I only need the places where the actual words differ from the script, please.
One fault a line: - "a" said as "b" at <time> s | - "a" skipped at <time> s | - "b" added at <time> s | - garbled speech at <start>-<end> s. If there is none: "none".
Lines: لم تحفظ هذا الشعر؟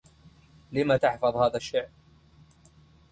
none